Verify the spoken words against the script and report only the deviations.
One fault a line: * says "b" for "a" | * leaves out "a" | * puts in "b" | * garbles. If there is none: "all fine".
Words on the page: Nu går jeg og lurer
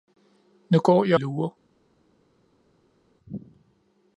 * leaves out "og"